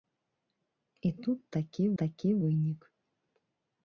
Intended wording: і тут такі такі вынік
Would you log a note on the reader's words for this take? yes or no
no